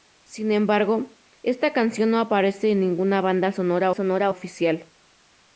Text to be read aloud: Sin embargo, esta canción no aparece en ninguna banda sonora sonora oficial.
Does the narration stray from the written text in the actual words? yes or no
no